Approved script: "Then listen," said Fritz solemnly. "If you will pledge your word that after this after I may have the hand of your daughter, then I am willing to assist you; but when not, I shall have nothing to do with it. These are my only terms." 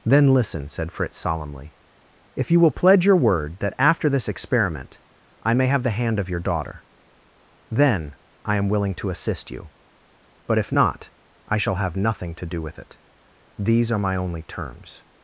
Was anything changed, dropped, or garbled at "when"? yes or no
yes